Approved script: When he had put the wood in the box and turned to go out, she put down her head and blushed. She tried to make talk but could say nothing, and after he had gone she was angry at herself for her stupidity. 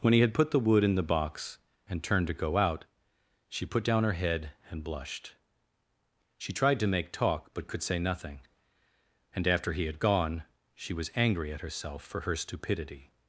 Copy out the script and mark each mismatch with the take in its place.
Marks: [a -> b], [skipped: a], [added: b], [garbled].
When he had put the wood in the box and turned to go out, she put down her head and blushed. She tried to make talk but could say nothing, and after he had gone she was angry at herself for her stupidity.